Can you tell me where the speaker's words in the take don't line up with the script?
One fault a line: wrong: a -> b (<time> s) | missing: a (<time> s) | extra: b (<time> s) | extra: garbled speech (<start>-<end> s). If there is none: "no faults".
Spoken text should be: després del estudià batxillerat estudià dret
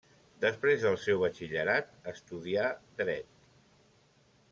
wrong: estudià -> seu (1.0 s)